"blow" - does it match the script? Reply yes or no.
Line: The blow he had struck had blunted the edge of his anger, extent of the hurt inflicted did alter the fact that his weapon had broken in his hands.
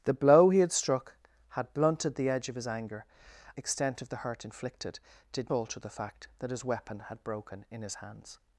yes